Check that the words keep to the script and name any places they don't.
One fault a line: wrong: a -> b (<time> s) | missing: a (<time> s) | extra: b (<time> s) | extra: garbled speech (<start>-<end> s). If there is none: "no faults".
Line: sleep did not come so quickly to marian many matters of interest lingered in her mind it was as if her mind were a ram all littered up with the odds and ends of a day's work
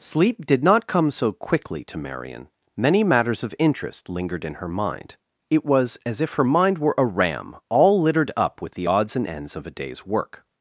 no faults